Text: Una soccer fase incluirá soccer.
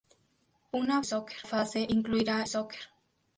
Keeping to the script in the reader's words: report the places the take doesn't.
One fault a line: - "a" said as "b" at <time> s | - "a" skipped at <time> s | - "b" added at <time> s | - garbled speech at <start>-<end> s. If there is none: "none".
none